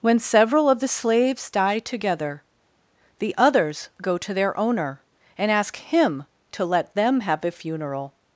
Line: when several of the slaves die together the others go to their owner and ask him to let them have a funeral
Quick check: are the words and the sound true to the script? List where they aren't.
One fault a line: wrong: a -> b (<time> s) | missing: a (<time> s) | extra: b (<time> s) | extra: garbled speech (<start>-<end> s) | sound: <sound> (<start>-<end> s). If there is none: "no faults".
no faults